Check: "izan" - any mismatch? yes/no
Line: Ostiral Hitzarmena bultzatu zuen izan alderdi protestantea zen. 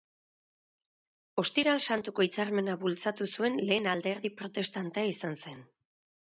yes